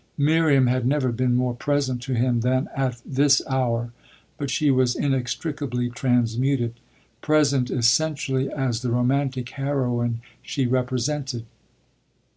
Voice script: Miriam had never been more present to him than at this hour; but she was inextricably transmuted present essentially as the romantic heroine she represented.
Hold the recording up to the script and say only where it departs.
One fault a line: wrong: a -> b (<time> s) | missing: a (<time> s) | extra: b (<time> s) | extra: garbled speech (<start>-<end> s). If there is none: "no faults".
no faults